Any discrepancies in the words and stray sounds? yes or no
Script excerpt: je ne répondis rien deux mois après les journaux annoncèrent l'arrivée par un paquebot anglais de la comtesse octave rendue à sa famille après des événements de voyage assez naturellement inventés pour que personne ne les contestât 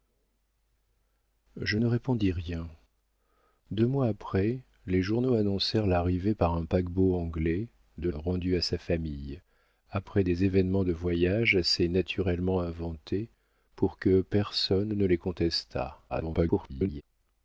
yes